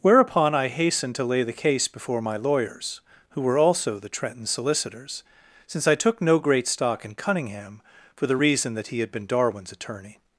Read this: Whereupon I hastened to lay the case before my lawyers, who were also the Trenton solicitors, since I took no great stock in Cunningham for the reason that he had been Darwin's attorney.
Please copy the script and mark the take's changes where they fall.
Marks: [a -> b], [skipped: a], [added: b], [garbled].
Whereupon I hastened to lay the case before my lawyers, who were also the Trenton solicitors, since I took no great stock in Cunningham for the reason that he had been Darwin's attorney.